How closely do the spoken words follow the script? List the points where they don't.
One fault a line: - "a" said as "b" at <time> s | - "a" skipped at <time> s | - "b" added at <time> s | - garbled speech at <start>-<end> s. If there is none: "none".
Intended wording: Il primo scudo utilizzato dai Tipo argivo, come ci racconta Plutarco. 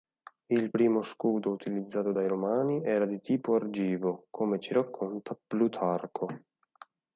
- "Romani era di" added at 2.3 s